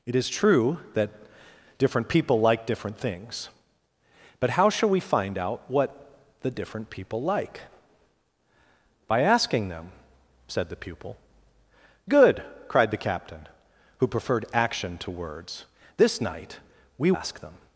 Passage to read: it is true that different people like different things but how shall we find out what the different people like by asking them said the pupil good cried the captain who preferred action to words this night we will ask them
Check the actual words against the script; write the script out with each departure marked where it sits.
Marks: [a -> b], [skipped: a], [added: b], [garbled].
it is true that different people like different things but how shall we find out what the different people like by asking them said the pupil good cried the captain who preferred action to words this night we [skipped: will] ask them